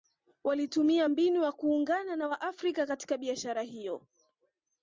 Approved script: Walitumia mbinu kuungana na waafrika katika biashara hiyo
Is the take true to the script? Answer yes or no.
no